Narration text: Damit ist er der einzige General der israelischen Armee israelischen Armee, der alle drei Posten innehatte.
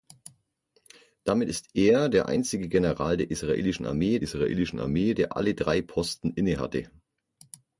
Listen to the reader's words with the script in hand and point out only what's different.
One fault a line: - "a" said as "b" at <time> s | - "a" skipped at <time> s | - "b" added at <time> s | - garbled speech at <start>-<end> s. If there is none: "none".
none